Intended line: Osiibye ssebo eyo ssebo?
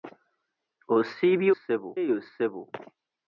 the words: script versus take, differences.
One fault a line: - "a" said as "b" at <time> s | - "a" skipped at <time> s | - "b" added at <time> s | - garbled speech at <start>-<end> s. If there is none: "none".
none